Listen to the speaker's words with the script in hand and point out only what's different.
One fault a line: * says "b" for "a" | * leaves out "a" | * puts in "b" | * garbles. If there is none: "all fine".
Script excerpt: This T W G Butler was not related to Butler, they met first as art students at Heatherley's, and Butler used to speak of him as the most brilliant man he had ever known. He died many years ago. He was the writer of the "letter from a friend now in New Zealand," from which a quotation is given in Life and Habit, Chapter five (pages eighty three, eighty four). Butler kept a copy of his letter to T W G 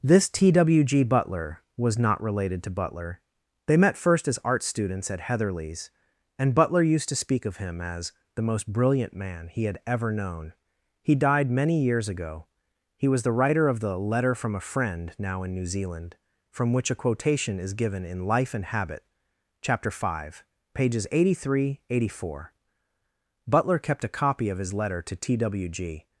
all fine